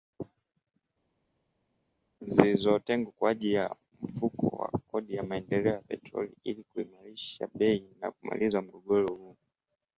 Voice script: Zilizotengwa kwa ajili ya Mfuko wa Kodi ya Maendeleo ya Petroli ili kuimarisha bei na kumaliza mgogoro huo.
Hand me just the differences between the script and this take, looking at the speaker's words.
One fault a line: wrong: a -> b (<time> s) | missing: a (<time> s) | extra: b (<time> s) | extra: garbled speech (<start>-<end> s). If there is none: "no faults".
no faults